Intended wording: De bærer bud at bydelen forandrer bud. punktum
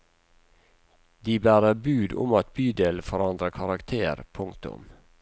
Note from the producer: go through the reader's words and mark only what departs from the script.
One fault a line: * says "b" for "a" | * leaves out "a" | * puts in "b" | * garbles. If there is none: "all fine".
* puts in "om"
* says "karakter" for "bud"